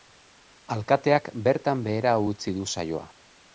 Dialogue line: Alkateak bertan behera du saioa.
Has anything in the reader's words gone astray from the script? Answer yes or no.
yes